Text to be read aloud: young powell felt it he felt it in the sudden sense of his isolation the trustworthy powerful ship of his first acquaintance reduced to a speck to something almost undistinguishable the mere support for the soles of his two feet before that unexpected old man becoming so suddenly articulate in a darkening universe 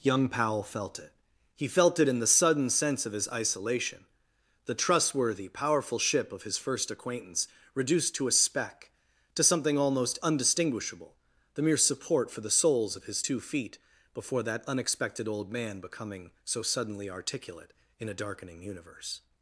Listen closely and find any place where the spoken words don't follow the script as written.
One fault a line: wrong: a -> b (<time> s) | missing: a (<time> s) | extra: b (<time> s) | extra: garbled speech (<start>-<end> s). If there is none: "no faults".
no faults